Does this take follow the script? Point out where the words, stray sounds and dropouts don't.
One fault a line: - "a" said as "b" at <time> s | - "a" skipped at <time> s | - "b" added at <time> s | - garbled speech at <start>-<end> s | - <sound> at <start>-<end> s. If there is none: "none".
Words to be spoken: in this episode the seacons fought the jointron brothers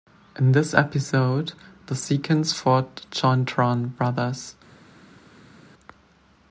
none